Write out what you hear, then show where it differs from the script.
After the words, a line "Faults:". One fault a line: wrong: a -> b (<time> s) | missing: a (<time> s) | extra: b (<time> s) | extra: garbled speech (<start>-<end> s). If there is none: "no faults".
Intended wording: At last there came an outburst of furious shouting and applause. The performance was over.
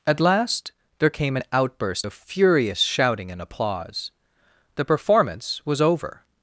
At last there came an outburst of furious shouting and applause. The performance was over.
Faults:
no faults